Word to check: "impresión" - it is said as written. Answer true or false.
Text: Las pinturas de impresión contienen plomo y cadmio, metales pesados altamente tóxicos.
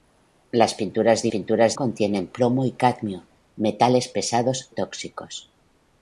false